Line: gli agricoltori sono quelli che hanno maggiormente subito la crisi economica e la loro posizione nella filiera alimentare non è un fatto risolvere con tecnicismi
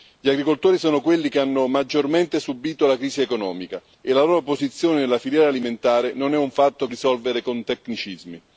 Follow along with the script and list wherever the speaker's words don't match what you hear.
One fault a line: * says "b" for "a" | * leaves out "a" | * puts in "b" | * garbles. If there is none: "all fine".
all fine